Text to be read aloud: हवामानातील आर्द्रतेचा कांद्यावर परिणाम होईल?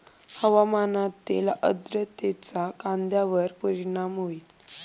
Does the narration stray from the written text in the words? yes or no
no